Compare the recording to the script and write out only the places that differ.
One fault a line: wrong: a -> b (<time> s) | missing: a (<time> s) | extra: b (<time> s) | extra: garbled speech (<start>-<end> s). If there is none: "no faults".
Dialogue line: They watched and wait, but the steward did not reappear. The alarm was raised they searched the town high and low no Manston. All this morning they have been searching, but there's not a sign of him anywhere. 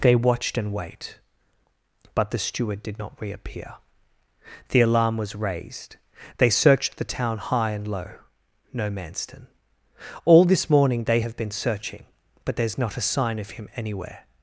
no faults